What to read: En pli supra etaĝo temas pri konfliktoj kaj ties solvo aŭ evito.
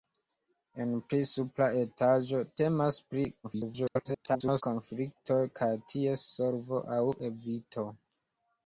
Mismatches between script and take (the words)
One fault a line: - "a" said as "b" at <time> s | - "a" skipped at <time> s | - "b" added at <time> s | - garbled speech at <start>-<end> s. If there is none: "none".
- garbled speech at 3.4-4.6 s